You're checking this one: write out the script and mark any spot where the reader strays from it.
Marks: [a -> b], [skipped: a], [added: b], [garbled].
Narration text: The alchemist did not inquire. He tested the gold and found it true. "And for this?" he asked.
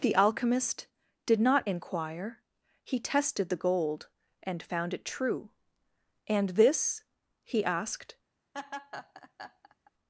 The alchemist did not inquire. He tested the gold and found it true. "And [skipped: for] this?" he asked.